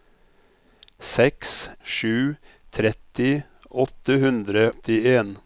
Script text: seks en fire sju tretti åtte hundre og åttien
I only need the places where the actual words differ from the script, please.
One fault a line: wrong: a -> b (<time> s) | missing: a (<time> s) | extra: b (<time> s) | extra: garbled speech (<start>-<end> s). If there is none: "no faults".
missing: en fire (1.7 s)
missing: og (4.7 s)